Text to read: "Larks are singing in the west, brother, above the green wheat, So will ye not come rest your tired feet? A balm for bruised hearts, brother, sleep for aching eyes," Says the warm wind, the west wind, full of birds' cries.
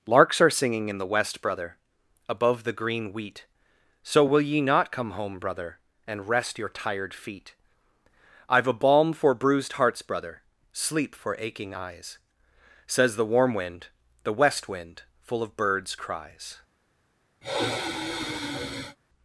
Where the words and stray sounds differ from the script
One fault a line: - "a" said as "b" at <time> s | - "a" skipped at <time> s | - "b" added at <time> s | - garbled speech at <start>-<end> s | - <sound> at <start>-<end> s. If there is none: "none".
- "home brother and" added at 5.1 s
- "I've" added at 8.5 s
- sigh at 17.4-19.0 s